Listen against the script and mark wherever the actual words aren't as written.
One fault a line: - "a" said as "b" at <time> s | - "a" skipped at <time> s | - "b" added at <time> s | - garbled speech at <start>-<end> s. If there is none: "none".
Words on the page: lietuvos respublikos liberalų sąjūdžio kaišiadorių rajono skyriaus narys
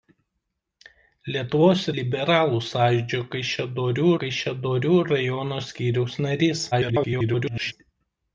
- "respublikos" skipped at 1.8 s
- "kaišiadorių" added at 4.2 s
- garbled speech at 6.7-7.7 s